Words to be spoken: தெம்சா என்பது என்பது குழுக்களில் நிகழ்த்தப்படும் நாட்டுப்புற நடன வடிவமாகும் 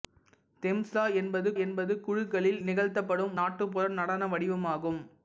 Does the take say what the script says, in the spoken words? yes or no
yes